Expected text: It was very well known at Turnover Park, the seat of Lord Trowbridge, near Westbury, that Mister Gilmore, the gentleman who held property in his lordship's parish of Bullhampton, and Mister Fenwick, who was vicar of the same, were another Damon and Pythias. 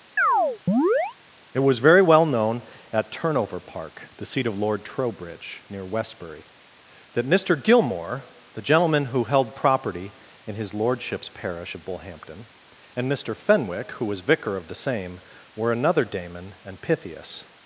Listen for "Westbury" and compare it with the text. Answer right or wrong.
right